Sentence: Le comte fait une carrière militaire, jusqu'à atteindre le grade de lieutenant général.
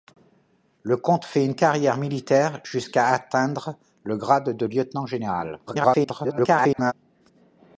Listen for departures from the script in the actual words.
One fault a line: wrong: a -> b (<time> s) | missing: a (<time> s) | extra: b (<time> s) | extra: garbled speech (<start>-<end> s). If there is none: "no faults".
extra: garbled speech (5.7-6.9 s)